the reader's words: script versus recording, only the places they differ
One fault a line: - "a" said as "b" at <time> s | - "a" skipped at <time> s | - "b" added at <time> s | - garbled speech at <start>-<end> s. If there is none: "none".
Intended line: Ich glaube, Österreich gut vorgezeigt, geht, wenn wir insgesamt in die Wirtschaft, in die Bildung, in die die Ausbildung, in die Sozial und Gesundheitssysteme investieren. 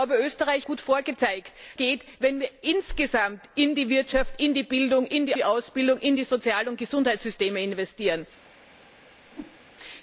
none